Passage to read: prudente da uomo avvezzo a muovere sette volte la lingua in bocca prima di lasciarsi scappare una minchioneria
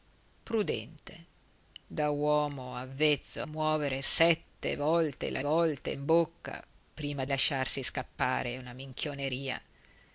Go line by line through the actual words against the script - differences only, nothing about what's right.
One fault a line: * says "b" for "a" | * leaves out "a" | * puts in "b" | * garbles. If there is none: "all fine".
* leaves out "a"
* says "volte" for "lingua"
* leaves out "di"